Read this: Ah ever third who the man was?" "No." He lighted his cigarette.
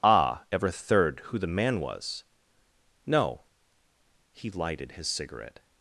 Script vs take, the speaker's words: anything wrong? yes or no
no